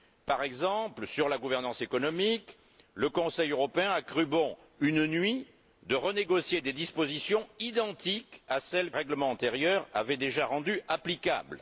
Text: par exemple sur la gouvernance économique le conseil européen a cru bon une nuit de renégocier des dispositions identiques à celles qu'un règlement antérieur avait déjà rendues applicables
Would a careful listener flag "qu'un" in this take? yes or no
yes